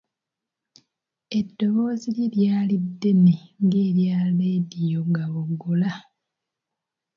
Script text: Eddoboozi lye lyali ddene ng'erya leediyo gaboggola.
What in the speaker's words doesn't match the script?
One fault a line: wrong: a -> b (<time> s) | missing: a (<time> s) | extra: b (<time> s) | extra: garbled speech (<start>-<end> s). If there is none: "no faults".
no faults